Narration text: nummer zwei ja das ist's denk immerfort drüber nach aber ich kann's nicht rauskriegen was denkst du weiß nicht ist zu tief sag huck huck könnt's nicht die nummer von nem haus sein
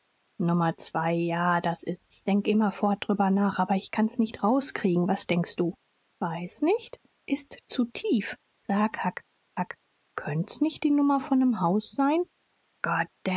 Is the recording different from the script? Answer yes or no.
no